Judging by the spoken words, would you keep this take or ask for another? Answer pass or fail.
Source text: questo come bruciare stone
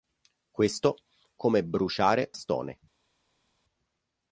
pass